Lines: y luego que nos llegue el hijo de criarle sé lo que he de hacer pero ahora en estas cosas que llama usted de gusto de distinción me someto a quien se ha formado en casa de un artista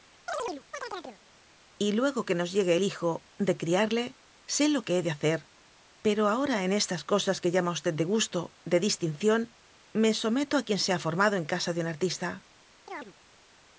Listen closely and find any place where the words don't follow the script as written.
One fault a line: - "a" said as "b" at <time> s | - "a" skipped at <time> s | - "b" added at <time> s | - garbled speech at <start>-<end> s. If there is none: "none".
none